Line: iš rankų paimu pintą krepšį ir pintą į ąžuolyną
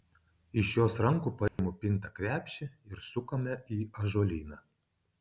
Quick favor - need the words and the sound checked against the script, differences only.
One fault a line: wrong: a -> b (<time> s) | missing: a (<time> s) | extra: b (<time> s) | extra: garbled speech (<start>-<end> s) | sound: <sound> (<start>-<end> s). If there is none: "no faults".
extra: jos (0.8 s)
sound: dropout (1.5-1.6 s)
wrong: pintą -> sukame (3.1 s)